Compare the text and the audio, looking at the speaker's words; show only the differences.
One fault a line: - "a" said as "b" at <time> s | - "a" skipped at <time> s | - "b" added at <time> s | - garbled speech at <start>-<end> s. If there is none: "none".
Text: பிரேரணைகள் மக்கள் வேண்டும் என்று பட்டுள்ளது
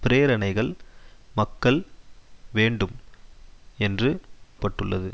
none